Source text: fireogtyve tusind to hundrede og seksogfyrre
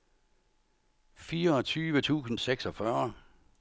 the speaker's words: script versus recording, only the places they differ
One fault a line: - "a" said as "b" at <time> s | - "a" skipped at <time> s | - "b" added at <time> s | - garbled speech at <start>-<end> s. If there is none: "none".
- "to hundrede og" skipped at 2.4 s